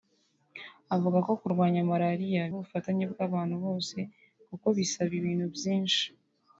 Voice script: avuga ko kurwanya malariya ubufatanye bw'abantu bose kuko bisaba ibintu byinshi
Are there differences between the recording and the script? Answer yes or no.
no